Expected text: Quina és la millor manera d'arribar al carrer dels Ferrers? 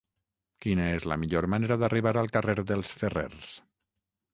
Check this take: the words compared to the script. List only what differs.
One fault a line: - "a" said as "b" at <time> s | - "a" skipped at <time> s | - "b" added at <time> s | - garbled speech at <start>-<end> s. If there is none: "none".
none